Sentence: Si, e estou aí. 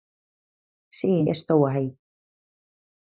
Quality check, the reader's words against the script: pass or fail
pass